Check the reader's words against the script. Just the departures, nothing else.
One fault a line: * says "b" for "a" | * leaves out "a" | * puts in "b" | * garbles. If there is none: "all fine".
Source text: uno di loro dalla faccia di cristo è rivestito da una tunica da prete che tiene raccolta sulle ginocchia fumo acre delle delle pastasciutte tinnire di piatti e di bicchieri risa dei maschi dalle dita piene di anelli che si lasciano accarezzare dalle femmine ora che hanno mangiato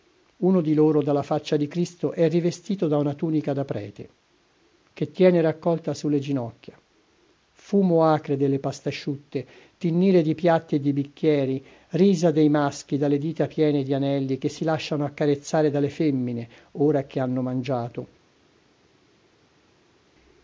* leaves out "delle"